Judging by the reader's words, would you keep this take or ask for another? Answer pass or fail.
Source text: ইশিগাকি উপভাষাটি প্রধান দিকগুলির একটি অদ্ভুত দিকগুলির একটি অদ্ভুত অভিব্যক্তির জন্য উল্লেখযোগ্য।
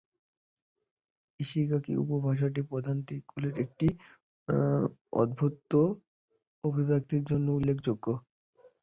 fail